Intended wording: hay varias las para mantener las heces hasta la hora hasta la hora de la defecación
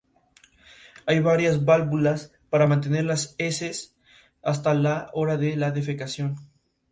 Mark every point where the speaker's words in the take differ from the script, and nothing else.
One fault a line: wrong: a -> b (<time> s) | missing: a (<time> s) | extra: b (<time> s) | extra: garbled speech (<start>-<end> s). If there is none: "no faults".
wrong: las -> válvulas (1.6 s)
missing: hasta la hora (5.4 s)